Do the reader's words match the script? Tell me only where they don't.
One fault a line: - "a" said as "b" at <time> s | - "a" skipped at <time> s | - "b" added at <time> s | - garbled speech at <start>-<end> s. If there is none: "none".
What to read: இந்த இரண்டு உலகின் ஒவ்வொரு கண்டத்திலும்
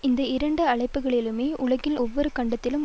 - "அமைப்புக்களிலுமே" added at 0.7 s